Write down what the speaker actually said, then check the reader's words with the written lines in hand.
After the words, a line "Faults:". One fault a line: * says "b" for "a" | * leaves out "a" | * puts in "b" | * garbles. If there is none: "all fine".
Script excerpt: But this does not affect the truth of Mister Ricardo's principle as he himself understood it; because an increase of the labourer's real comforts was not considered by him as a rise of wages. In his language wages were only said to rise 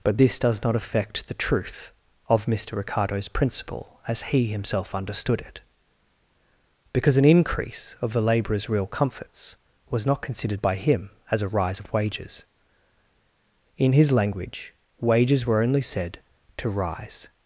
But this does not affect the truth of Mister Ricardo's principle as he himself understood it; because an increase of the labourer's real comforts was not considered by him as a rise of wages. In his language wages were only said to rise
Faults:
all fine